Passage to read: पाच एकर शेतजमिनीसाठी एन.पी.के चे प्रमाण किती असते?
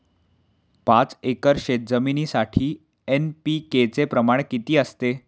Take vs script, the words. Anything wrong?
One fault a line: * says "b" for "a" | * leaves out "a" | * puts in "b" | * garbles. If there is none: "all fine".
all fine